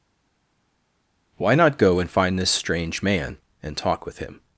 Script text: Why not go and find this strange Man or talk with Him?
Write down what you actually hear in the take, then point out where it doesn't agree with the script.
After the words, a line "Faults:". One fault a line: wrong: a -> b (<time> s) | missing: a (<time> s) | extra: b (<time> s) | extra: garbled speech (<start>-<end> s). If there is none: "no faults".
Why not go and find this strange Man and talk with Him?
Faults:
wrong: or -> and (3.6 s)